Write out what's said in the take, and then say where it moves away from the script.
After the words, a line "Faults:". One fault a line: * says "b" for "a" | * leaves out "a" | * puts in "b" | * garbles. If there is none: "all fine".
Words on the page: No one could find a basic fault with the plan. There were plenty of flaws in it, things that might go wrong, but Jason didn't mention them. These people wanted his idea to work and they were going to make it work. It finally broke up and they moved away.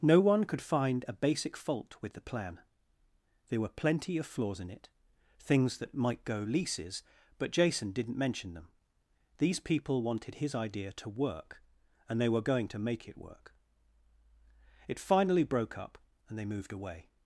No one could find a basic fault with the plan. There were plenty of flaws in it, things that might go leases, but Jason didn't mention them. These people wanted his idea to work and they were going to make it work. It finally broke up and they moved away.
Faults:
* says "leases" for "wrong"